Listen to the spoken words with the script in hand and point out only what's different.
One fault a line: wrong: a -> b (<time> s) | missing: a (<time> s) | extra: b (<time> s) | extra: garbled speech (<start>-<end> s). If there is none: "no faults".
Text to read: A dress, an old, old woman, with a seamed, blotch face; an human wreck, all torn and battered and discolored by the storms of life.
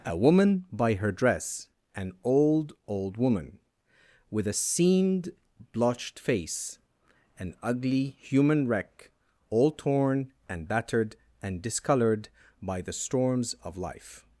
extra: woman by her (0.2 s)
wrong: blotch -> blotched (5.7 s)
extra: ugly (7.6 s)